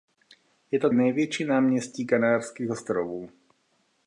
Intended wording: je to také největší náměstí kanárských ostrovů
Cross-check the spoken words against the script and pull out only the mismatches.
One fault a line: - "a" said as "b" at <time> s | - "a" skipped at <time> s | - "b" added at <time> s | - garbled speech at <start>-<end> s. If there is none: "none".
- "také" skipped at 0.9 s